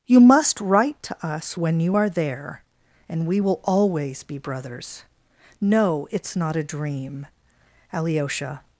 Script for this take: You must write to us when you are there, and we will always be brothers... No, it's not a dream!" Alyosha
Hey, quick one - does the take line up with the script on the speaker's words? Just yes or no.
yes